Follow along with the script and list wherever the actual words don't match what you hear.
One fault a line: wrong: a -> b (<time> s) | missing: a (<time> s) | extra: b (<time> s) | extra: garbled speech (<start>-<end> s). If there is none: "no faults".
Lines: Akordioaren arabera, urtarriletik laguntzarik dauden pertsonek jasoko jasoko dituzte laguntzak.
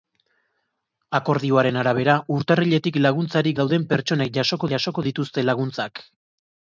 no faults